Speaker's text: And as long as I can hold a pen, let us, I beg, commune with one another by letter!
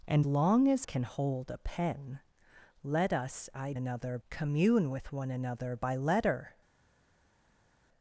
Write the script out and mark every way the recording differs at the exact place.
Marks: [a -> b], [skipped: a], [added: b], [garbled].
And [skipped: as] long as [skipped: I] can hold a pen, let us, I [beg, -> another] commune with one another by letter!